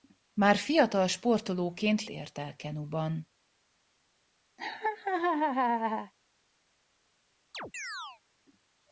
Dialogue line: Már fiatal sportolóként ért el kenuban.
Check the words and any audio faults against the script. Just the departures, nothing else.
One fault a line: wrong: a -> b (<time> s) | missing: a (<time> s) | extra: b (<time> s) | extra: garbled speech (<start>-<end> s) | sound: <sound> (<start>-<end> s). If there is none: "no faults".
sound: laugh (4.6-6.1 s)
sound: chirp (7.5-8.2 s)